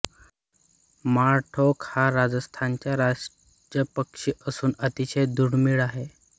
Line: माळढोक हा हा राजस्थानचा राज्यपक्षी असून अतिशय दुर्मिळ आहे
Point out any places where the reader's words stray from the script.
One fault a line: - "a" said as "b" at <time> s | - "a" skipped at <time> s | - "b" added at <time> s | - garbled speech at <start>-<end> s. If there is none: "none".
- "हा" skipped at 2.1 s